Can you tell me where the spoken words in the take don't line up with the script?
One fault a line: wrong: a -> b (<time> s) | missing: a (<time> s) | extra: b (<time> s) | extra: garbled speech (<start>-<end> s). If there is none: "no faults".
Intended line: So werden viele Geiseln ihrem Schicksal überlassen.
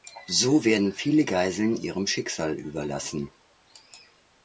no faults